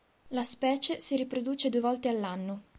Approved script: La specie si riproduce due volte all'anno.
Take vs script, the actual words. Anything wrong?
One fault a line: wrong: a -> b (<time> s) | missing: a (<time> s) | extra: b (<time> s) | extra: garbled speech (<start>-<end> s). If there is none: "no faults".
no faults